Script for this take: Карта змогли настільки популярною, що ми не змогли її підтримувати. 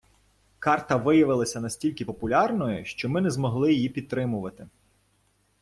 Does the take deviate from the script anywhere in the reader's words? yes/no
yes